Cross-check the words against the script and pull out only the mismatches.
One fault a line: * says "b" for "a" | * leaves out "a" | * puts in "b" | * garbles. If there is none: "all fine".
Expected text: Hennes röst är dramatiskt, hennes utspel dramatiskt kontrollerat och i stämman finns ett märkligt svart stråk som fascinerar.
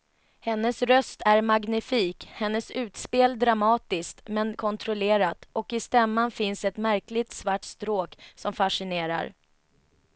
* says "magnifik" for "dramatiskt"
* puts in "men"